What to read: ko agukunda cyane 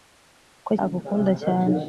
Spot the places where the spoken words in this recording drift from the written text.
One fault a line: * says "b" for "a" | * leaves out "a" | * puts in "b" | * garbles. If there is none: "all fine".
all fine